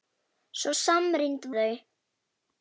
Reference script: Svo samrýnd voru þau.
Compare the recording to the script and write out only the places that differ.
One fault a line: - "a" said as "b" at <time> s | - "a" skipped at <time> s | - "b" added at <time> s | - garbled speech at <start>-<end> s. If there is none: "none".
- "voru" skipped at 1.5 s